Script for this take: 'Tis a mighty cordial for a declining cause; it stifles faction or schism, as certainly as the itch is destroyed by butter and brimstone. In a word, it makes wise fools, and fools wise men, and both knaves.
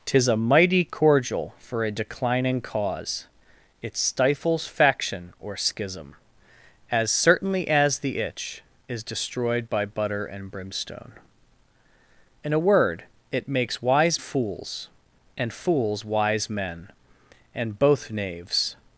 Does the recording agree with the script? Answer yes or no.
yes